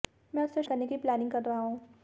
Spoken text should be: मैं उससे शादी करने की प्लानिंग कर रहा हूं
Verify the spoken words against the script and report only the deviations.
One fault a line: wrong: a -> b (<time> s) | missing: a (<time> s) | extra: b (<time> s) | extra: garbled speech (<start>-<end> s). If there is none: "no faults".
missing: शादी (0.6 s)